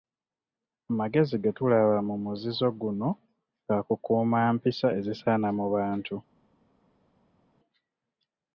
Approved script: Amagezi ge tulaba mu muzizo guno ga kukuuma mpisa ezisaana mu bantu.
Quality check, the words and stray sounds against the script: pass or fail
pass